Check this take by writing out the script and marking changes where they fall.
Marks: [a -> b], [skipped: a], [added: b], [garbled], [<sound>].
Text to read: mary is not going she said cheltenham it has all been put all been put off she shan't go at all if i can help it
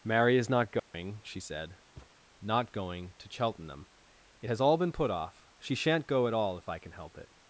mary is not going [dropout] she said [thud] [added: not going to] cheltenham it has all been put [skipped: all been put] off she shan't go at all if i can help it